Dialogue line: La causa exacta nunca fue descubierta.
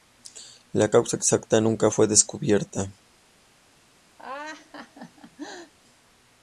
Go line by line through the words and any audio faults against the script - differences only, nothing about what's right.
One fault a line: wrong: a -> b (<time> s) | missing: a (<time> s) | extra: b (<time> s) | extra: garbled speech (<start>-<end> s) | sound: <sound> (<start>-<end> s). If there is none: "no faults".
sound: laugh (4.2-5.7 s)